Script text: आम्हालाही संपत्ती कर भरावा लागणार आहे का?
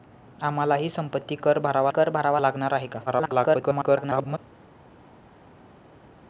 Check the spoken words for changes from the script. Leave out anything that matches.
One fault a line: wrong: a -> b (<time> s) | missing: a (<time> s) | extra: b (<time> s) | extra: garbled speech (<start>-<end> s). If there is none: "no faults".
extra: कर भरावा (1.9 s)
extra: garbled speech (3.1-4.4 s)